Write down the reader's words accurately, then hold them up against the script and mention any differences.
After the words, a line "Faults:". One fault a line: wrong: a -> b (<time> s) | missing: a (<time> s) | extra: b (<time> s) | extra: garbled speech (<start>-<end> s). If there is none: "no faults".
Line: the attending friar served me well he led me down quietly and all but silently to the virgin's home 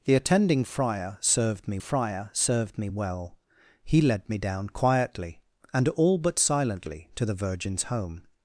the attending friar served me friar served me well he led me down quietly and all but silently to the virgin's home
Faults:
extra: friar served me (1.8 s)